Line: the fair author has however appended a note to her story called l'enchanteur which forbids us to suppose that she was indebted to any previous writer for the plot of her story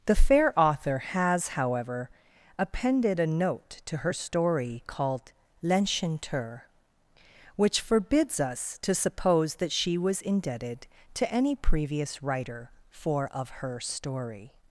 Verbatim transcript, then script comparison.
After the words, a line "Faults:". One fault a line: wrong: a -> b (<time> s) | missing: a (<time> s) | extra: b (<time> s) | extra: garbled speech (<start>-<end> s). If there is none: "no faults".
the fair author has however appended a note to her story called l'enchanteur which forbids us to suppose that she was indebted to any previous writer for of her story
Faults:
missing: the plot (13.3 s)